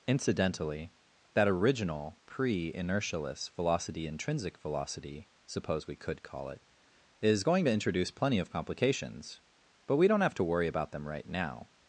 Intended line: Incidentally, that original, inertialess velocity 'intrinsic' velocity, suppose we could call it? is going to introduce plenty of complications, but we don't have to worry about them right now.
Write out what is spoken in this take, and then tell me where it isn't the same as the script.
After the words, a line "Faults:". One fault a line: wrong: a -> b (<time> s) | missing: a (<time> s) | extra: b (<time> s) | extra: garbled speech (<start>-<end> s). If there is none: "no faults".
Incidentally, that original, pre inertialess velocity 'intrinsic' velocity, suppose we could call it? is going to introduce plenty of complications, but we don't have to worry about them right now.
Faults:
extra: pre (2.2 s)